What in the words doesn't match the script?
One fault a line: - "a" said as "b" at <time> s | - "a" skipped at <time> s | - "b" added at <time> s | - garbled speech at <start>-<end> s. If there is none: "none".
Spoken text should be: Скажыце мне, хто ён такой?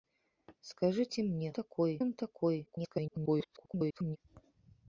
- "хто" said as "такой" at 1.6 s
- garbled speech at 2.7-4.2 s